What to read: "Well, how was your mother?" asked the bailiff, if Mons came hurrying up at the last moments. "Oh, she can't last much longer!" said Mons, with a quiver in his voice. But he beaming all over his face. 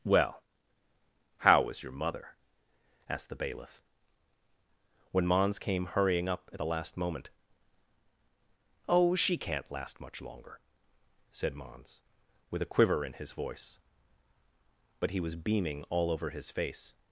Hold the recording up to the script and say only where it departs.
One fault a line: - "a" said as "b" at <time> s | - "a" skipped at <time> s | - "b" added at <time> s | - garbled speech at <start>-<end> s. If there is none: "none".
- "if" said as "when" at 5.1 s
- "moments" said as "moment" at 7.0 s
- "was" added at 15.2 s